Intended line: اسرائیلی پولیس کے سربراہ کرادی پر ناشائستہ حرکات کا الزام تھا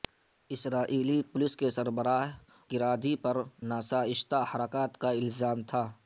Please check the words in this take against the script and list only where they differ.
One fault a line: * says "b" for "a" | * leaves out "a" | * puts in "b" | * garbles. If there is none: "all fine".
all fine